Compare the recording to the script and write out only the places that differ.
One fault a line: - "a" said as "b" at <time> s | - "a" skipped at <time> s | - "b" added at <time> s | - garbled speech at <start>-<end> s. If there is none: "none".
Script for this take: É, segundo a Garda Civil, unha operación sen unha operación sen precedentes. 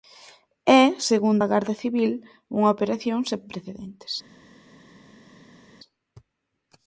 - "unha operación sen" skipped at 3.4 s